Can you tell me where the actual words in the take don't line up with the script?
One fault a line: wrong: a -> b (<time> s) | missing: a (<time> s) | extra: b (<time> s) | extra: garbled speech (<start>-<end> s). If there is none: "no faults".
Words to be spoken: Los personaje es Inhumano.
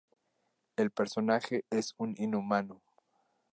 wrong: Los -> El (0.8 s)
extra: un (1.9 s)